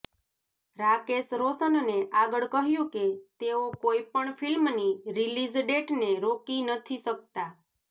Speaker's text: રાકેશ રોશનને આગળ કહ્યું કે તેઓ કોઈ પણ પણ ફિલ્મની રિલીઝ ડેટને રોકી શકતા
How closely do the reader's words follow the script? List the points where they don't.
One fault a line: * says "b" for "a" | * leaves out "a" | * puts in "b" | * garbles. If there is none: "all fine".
* leaves out "પણ"
* puts in "નથી"